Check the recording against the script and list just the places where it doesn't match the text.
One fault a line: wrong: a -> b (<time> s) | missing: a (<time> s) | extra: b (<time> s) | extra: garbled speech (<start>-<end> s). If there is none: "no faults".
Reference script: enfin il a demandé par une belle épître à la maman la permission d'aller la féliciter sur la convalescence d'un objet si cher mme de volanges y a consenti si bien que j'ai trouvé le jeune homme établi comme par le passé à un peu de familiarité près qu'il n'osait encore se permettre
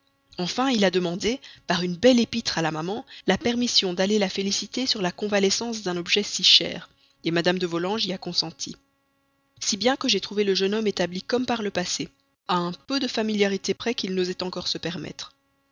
no faults